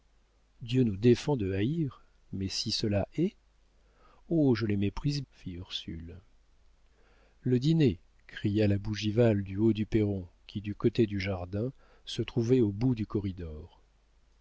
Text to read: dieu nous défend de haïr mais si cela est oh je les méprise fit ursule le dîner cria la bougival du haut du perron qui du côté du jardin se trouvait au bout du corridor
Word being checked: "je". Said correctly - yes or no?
yes